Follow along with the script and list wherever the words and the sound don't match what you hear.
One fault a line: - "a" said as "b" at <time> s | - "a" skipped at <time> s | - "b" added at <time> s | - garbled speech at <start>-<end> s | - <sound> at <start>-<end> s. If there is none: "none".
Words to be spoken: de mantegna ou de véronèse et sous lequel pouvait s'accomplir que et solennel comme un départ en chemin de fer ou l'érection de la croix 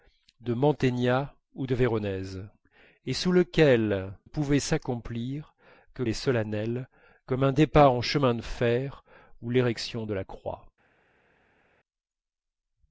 none